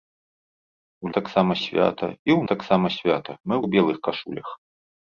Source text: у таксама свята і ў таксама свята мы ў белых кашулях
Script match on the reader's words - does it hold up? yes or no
yes